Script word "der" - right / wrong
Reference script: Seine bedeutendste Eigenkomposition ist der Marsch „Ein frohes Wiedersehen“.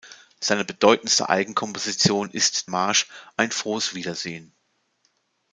wrong